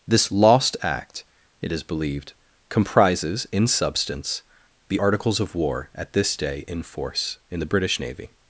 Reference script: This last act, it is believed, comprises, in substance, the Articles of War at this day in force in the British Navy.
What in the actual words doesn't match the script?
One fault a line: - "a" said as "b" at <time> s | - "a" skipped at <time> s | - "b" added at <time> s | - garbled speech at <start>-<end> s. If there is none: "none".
- "last" said as "lost" at 0.3 s